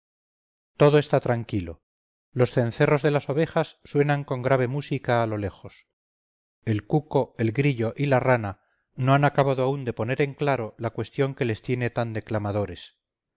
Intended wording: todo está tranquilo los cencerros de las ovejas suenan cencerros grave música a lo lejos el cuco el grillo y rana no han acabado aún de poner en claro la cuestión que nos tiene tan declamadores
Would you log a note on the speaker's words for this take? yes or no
yes